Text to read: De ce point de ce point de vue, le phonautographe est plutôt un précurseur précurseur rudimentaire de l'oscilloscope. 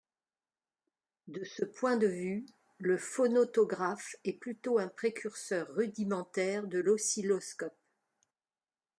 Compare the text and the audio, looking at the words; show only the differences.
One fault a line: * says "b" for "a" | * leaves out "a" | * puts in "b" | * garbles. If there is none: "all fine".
* leaves out "ce point de"
* leaves out "précurseur"